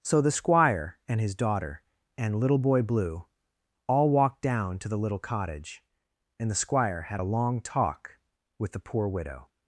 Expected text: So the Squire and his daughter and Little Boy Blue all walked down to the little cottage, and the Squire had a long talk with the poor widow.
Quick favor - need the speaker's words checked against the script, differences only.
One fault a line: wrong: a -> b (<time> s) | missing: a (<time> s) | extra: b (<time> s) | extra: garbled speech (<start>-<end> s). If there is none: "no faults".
no faults